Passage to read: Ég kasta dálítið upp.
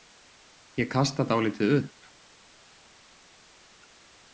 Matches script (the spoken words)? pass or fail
pass